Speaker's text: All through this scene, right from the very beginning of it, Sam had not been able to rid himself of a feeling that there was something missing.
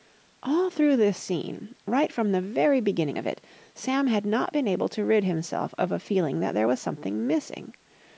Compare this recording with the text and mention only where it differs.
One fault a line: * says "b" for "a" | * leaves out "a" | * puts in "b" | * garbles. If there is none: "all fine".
all fine